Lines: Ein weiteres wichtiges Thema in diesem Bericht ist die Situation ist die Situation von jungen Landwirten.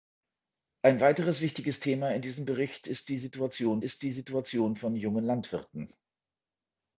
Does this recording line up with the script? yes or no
yes